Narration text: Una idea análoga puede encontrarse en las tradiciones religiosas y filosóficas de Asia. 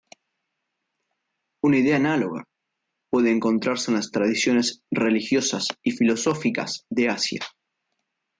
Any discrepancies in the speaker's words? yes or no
no